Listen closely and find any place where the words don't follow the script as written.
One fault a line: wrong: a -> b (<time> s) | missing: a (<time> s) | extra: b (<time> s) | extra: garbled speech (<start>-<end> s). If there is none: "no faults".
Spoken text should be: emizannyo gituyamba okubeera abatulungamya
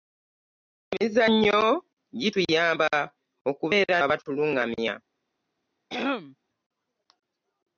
no faults